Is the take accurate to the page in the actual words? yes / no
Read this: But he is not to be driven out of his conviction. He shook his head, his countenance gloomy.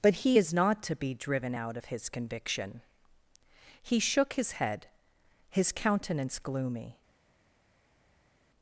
yes